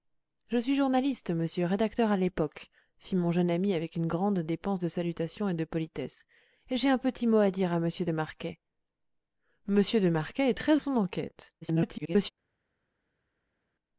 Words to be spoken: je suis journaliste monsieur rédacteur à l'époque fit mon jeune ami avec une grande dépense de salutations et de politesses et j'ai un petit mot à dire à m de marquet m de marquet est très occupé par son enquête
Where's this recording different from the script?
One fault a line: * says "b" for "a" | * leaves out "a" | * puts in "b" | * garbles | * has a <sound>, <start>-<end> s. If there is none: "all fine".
* leaves out "occupé par"
* garbles